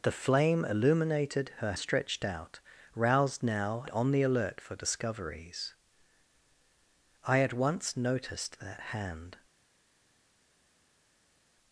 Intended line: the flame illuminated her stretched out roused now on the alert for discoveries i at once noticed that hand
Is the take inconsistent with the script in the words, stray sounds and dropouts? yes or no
no